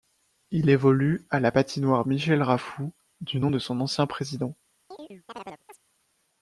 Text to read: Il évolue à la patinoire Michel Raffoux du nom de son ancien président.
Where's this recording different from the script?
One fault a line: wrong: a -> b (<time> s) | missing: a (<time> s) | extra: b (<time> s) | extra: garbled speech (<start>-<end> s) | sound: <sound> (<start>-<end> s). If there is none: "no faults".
sound: chirp (4.9-5.8 s)